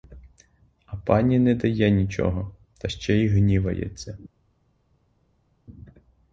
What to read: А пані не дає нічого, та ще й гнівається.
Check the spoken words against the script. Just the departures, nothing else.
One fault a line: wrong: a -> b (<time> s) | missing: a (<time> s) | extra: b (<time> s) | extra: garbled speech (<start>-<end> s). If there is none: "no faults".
no faults